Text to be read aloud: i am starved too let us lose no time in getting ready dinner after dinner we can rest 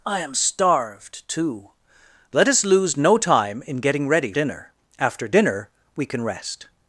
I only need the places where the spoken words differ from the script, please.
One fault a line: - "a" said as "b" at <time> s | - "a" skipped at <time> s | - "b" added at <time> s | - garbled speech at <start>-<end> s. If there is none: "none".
none